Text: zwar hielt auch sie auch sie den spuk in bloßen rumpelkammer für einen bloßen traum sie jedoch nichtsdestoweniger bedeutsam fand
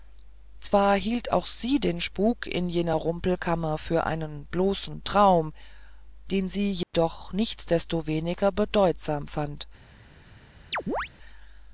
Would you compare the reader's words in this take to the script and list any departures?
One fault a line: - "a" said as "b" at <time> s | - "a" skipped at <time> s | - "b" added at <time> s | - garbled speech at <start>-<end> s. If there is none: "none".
- "auch sie" skipped at 1.8 s
- "bloßen" said as "jener" at 2.7 s
- "den" added at 6.3 s